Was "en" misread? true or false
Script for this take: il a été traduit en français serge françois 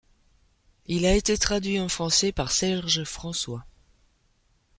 false